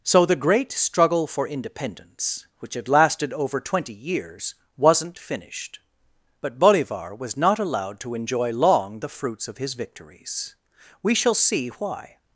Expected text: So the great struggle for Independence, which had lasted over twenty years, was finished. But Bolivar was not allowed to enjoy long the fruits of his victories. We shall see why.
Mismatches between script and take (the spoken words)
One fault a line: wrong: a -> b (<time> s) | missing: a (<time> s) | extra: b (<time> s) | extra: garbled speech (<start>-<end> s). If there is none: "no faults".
wrong: was -> wasn't (4.8 s)